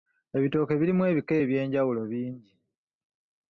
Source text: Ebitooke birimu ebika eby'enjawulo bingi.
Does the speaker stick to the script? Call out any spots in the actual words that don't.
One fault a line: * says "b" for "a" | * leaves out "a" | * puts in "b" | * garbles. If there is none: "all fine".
all fine